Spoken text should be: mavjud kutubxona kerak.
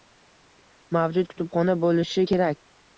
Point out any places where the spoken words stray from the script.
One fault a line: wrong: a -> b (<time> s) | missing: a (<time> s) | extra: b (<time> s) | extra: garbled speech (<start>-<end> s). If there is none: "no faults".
extra: bo‘lishi (1.8 s)